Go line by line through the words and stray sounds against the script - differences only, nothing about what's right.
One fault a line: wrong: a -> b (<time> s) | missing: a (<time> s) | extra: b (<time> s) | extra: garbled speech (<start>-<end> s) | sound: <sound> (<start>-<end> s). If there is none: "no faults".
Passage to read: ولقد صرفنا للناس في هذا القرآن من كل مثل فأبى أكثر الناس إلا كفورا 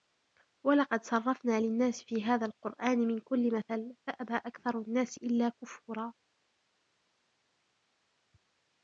no faults